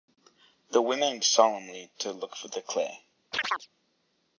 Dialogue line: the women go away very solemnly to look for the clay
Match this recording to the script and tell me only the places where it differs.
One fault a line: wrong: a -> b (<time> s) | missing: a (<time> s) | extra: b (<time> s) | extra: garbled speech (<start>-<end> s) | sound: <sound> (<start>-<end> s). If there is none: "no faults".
missing: go away very (1.2 s)
sound: chirp (3.3-3.7 s)